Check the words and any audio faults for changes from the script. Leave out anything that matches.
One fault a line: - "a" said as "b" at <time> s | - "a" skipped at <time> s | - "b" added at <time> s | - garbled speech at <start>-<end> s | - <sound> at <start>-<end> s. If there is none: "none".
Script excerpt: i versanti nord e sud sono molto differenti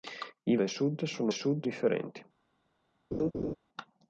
- "versanti nord" skipped at 0.6 s
- "molto" said as "sud" at 1.3 s
- laugh at 3.1-3.6 s